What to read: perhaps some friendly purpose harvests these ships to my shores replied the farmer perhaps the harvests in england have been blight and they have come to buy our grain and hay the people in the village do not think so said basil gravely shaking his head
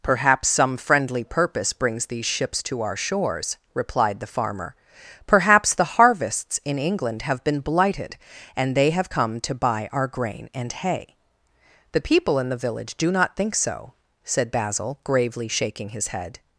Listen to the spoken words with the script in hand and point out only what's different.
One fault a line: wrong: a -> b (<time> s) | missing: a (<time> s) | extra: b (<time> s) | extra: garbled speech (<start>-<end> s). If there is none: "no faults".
wrong: harvests -> brings (1.7 s)
wrong: my -> our (2.8 s)
wrong: blight -> blighted (7.6 s)